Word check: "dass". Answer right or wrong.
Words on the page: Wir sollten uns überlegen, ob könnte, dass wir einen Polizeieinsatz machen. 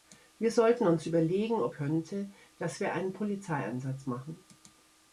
right